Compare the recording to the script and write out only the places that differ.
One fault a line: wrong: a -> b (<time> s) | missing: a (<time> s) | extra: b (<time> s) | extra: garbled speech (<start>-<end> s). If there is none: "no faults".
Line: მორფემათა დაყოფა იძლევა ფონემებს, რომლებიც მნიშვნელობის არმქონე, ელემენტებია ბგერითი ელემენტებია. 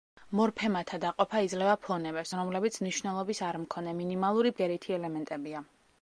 wrong: ელემენტებია -> მინიმალური (4.0 s)